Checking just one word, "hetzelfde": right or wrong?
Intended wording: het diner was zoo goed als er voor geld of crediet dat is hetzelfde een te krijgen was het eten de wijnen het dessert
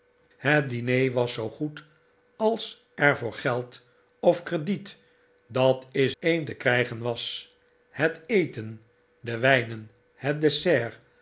wrong